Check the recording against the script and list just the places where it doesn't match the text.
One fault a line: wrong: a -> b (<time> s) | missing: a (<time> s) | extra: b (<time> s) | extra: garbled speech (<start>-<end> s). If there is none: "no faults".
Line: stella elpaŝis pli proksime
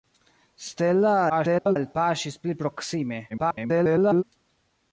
extra: garbled speech (1.3-1.8 s)
extra: garbled speech (3.3-4.2 s)